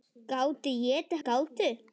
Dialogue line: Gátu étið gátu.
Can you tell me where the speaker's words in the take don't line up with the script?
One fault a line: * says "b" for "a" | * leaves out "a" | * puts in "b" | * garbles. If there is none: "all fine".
all fine